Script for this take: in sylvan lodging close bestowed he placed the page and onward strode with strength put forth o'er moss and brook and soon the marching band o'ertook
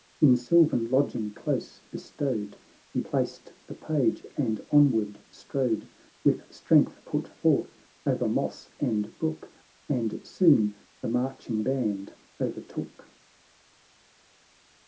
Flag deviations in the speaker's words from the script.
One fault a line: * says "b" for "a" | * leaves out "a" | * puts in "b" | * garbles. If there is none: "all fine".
all fine